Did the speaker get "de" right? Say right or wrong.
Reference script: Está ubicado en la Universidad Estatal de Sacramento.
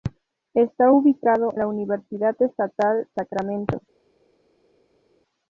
wrong